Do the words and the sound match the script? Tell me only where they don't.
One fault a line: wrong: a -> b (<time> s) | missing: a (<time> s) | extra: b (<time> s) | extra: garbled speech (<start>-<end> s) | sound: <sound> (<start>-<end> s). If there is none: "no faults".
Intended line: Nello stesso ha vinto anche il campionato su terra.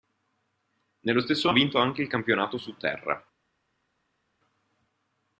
no faults